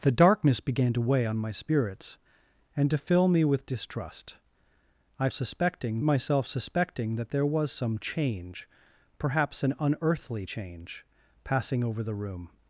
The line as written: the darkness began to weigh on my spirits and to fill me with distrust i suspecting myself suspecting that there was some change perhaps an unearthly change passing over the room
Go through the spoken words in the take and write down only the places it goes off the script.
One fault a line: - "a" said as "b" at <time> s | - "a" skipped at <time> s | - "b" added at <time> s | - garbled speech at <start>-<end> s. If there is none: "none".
none